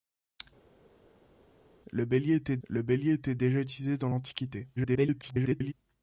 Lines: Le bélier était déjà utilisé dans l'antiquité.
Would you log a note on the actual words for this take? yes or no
yes